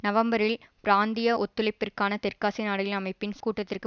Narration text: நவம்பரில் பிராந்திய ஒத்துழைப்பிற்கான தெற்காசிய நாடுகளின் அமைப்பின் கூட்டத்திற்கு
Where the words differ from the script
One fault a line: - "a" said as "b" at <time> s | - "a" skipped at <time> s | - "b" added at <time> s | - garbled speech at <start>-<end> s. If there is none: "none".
none